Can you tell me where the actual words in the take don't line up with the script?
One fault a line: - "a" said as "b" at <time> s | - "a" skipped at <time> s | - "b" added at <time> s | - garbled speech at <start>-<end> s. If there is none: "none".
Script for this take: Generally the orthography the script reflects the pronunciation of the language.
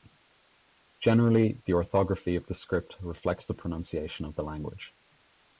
- "of" added at 2.4 s